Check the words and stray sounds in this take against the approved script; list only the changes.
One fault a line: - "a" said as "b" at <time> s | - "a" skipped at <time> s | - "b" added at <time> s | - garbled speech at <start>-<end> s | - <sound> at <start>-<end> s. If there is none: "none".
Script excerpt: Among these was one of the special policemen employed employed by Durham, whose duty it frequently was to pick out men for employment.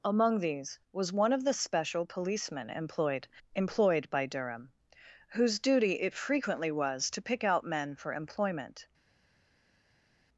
none